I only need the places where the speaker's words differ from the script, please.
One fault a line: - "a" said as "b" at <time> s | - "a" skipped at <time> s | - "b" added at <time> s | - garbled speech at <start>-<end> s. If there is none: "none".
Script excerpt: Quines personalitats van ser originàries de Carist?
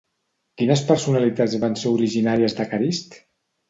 none